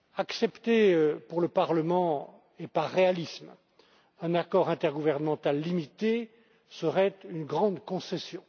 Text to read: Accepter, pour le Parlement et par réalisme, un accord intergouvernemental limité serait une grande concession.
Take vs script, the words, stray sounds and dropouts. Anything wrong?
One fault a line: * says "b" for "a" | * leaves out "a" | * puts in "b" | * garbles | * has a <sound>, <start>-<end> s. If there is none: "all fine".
all fine